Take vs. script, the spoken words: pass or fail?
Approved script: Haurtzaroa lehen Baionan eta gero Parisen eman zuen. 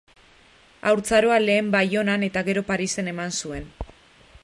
pass